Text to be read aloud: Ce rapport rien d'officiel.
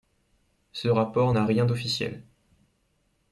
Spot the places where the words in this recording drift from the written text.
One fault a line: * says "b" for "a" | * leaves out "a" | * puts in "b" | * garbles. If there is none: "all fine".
* puts in "n'a"